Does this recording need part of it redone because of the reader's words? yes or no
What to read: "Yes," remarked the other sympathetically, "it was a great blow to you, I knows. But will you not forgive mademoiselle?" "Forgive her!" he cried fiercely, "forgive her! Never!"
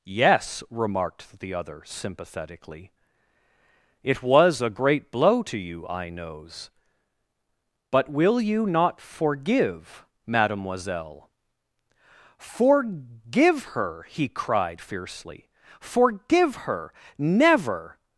no